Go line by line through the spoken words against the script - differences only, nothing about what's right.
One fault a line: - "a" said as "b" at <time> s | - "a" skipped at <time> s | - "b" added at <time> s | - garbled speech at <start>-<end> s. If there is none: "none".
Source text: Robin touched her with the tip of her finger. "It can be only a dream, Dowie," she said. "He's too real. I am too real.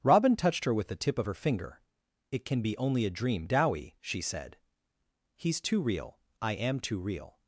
none